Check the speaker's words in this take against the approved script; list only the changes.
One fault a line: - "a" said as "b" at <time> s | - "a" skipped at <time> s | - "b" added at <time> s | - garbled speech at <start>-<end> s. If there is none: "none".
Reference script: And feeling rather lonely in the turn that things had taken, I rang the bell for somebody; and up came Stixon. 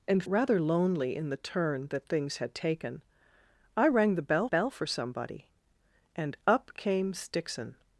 - "feeling" skipped at 0.2 s
- "bell" added at 4.5 s